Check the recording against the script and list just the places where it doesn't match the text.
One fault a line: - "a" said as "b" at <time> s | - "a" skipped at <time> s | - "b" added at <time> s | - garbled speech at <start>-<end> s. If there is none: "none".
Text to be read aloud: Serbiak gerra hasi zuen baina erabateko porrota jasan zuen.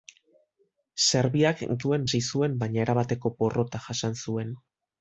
- "gerra" said as "zuen" at 1.8 s